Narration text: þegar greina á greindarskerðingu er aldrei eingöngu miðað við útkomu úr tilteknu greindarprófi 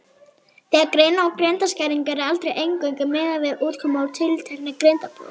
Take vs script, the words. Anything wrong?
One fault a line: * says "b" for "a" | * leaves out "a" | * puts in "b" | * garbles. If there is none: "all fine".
all fine